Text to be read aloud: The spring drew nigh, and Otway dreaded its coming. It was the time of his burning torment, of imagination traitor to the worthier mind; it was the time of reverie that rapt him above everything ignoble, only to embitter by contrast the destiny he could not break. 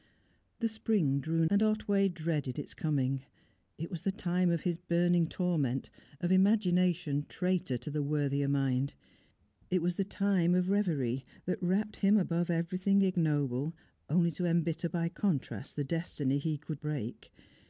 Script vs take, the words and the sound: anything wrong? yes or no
yes